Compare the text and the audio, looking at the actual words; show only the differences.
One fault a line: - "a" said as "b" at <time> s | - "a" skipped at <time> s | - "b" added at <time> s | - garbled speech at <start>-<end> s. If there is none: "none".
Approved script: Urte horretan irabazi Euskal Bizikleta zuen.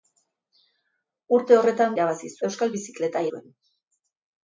none